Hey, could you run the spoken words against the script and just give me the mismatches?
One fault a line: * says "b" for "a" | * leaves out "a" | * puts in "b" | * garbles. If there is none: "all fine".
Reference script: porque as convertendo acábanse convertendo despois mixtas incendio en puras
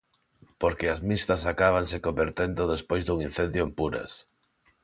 * says "mixtas" for "convertendo"
* says "dun" for "mixtas"